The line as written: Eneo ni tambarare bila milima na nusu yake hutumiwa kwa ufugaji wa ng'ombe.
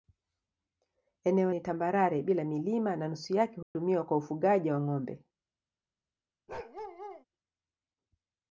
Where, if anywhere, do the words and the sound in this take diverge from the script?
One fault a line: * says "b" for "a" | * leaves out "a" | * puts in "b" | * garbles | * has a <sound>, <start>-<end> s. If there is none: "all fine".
* has a dropout, 3.6-3.8 s
* has a bark, 6.5-7.2 s